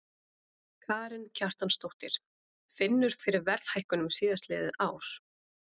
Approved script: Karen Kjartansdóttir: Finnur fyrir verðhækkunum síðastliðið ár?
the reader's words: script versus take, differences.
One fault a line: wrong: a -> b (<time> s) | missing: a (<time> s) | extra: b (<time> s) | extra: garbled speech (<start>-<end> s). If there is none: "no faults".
no faults